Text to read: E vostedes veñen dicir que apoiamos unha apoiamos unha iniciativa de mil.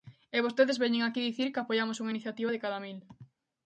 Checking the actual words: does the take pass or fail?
fail